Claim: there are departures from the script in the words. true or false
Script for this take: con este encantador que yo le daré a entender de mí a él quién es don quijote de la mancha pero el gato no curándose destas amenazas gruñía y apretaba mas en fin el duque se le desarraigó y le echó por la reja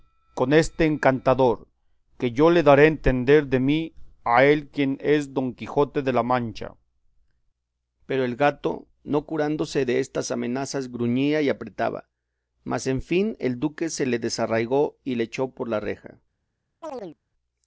false